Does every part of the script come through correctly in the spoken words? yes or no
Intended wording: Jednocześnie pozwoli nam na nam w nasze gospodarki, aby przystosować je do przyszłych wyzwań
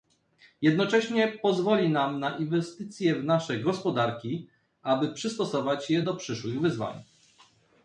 no